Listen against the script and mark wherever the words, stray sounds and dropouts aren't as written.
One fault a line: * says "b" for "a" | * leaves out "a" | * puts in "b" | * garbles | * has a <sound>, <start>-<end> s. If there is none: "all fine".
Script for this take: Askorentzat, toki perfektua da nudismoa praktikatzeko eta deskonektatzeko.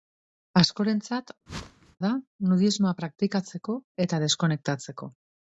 * leaves out "toki perfektua"
* has a whoosh, 1.5-2.0 s